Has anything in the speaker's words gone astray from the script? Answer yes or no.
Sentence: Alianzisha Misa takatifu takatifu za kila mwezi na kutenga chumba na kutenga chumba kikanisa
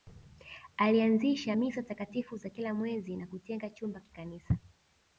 yes